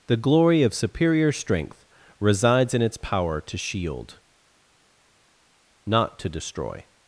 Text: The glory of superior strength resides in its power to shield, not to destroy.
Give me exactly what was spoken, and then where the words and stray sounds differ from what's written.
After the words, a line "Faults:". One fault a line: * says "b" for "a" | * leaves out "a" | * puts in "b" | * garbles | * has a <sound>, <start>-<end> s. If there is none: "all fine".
The glory of superior strength resides in its power to shield, not to destroy.
Faults:
all fine